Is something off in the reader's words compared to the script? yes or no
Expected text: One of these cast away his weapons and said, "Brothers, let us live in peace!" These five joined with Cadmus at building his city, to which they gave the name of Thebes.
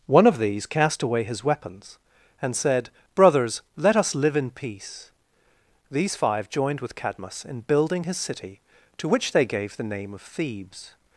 yes